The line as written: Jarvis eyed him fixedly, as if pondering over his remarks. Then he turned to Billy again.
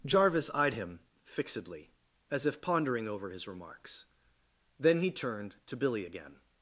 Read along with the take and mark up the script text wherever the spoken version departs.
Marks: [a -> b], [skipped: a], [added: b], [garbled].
Jarvis eyed him fixedly, as if pondering over his remarks. Then he turned to Billy again.